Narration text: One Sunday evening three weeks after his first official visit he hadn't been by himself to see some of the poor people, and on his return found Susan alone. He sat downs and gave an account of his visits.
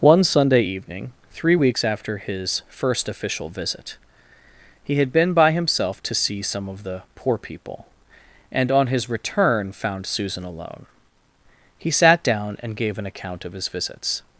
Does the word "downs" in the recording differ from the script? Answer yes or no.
yes